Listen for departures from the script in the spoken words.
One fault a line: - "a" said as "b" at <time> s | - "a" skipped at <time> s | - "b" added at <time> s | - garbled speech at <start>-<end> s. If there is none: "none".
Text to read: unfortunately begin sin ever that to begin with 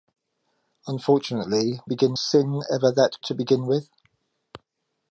none